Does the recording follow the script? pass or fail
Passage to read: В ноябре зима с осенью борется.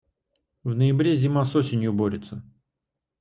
pass